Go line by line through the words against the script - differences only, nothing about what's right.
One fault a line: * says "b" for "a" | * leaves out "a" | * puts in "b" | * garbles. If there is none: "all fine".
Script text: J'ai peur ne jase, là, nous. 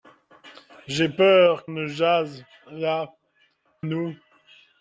all fine